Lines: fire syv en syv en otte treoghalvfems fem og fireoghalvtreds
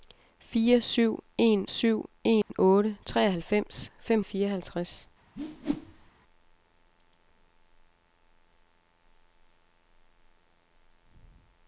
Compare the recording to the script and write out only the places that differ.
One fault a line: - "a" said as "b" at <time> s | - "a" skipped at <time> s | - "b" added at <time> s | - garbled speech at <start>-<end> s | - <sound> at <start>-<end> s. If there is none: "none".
- dropout at 2.4-2.5 s
- whoosh at 5.4-6.1 s